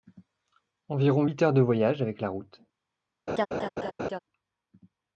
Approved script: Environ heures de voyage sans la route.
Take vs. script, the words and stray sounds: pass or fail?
fail